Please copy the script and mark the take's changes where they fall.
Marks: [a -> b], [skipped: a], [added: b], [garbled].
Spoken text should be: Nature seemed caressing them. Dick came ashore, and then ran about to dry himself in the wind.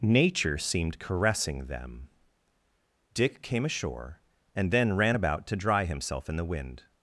Nature seemed caressing them. Dick came ashore, and then ran about to dry himself in the wind.